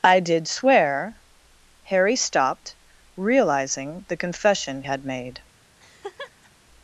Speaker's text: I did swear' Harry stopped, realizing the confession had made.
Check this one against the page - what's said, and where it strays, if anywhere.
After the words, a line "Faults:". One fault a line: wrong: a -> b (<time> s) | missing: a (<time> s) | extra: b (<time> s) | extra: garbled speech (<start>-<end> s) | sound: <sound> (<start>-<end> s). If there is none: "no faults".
I did swear' Harry stopped, realizing the confession had made.
Faults:
sound: laugh (5.8-6.5 s)